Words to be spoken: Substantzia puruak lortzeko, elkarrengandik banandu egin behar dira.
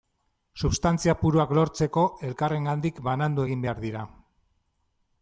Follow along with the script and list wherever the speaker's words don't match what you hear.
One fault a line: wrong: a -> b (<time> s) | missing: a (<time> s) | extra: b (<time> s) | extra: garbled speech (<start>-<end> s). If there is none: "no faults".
no faults